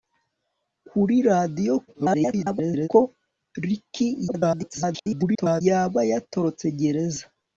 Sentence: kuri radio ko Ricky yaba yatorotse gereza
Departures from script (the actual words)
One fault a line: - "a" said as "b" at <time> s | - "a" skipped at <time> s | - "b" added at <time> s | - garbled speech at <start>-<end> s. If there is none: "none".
- garbled speech at 1.9-2.9 s
- garbled speech at 4.3-5.6 s